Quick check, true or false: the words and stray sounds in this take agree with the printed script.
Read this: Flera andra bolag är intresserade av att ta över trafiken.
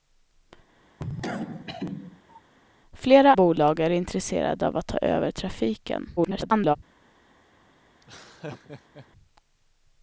false